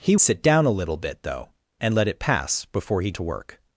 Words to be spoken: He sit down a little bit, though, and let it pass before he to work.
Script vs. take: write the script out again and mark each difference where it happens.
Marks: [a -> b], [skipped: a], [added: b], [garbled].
He sit down a little bit, though, and let it pass before he to work.